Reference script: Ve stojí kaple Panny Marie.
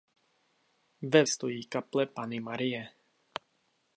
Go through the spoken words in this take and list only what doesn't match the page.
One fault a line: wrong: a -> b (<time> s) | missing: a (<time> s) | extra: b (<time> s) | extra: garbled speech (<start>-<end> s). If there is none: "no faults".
no faults